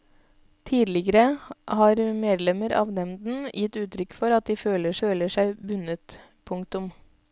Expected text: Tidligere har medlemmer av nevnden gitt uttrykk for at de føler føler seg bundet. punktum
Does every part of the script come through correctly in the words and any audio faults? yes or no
yes